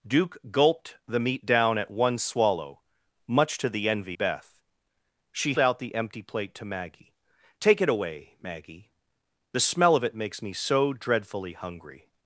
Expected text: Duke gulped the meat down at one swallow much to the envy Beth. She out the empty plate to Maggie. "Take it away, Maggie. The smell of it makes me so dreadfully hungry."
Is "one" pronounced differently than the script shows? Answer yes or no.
no